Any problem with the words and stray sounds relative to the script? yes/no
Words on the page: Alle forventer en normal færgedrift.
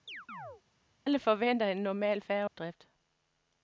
yes